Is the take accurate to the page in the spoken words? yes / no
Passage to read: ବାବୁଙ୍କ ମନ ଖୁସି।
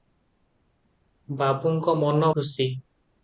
yes